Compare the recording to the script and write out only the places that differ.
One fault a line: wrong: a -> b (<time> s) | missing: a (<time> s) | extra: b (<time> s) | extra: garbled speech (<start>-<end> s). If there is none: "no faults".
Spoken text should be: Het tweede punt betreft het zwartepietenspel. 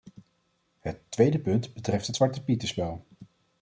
no faults